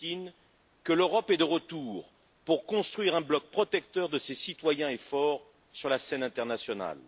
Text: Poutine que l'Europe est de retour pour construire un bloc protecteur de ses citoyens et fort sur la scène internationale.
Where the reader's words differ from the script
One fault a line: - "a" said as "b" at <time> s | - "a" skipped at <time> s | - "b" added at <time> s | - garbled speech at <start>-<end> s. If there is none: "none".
none